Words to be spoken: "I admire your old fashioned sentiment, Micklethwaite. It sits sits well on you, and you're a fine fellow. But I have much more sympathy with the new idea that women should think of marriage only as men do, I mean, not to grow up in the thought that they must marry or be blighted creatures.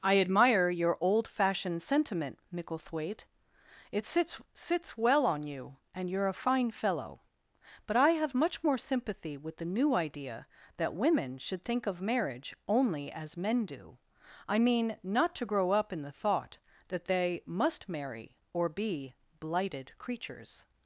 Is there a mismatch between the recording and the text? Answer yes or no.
no